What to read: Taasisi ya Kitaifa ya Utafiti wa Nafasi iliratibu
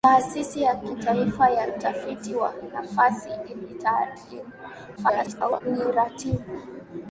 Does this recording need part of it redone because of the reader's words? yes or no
yes